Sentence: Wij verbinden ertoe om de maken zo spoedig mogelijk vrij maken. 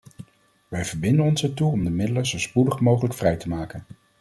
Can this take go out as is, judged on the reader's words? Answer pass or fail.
fail